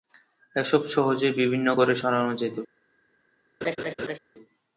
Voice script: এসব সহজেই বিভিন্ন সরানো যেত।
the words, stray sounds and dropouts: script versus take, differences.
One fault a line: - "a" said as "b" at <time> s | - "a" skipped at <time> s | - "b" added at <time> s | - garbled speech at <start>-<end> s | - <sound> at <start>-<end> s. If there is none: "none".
- "ঘরে" added at 1.7 s
- laugh at 3.6-4.2 s